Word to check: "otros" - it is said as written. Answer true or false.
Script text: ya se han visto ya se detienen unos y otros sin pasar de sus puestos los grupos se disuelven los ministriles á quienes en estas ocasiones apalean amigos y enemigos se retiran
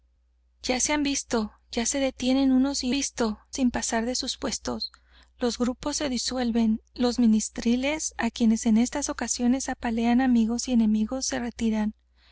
false